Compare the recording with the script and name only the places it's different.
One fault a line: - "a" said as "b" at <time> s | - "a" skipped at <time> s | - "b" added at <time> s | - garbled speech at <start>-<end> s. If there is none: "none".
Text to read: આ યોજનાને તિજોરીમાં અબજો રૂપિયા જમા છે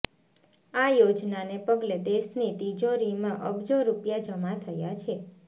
- "પગલે દેશની" added at 1.7 s
- "થયા" added at 4.6 s